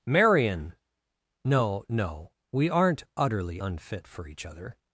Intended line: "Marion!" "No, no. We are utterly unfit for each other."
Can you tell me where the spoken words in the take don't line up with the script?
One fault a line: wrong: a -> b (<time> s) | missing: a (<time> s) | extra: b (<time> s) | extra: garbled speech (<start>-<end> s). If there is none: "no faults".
wrong: are -> aren't (2.7 s)